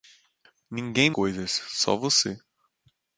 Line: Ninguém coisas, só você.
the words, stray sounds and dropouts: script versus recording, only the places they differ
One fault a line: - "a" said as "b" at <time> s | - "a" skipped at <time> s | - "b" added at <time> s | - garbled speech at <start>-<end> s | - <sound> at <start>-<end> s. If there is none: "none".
none